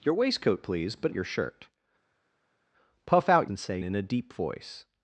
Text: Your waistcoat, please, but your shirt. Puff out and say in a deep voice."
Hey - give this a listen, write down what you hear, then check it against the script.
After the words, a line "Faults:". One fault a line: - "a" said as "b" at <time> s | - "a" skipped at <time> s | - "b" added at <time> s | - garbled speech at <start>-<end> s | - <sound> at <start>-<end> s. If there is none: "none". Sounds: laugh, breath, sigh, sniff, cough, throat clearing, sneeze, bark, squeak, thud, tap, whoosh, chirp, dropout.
Your waistcoat, please, but your shirt. Puff out and say in a deep voice."
Faults:
none